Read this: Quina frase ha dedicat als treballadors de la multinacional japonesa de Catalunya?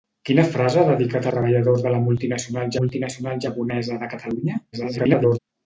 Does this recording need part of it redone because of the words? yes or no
yes